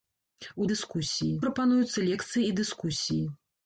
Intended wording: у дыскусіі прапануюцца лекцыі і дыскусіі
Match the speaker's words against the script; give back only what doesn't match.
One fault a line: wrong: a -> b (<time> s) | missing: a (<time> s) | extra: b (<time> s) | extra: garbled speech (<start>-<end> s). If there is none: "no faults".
no faults